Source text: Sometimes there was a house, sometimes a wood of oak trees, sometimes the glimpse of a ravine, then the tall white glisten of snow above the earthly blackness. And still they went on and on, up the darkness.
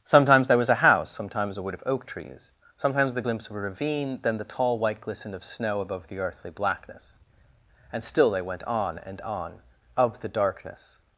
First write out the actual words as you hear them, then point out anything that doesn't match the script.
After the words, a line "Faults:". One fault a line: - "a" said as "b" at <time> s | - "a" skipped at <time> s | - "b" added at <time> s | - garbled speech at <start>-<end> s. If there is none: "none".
Sometimes there was a house, sometimes a wood of oak trees, sometimes the glimpse of a ravine, then the tall white glisten of snow above the earthly blackness. And still they went on and on, of the darkness.
Faults:
- "up" said as "of" at 10.0 s